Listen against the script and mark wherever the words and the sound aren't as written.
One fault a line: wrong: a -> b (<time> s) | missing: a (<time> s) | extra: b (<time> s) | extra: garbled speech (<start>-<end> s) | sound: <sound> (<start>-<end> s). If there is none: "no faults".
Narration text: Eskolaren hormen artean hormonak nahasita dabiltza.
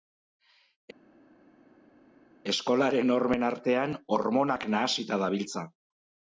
no faults